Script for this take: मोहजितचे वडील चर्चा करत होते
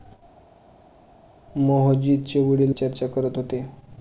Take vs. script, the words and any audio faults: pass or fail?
pass